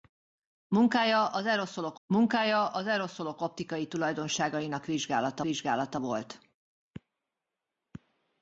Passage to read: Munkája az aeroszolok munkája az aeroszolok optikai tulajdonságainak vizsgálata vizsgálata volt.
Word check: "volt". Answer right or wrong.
right